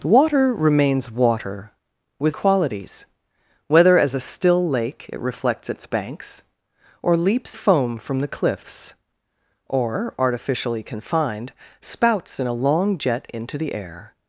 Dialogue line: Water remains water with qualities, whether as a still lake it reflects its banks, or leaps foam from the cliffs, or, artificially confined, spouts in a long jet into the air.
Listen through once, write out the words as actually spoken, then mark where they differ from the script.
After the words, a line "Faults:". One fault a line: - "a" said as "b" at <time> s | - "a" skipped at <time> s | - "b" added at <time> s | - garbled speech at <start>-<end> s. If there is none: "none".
Water remains water with qualities, whether as a still lake it reflects its banks, or leaps foam from the cliffs, or, artificially confined, spouts in a long jet into the air.
Faults:
none